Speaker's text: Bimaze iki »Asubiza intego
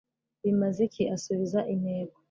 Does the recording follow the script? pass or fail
pass